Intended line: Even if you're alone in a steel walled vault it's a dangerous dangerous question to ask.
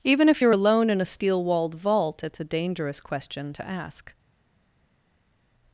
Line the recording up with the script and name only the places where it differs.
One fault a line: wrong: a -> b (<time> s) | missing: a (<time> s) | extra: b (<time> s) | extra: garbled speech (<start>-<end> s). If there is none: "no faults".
missing: dangerous (3.0 s)